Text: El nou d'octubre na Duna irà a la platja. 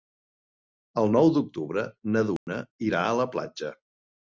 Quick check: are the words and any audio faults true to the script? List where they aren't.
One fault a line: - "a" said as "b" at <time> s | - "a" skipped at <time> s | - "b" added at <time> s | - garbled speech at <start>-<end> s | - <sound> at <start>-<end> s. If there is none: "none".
- dropout at 2.4-2.5 s